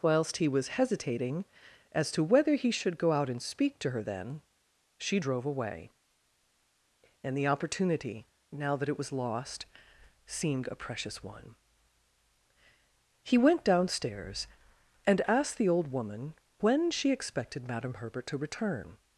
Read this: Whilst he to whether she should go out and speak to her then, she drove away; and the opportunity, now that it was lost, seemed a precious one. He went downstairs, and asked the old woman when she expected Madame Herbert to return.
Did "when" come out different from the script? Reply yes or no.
no